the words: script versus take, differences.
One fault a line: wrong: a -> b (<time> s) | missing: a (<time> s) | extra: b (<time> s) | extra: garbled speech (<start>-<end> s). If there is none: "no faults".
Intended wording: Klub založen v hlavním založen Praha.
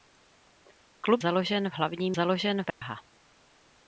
no faults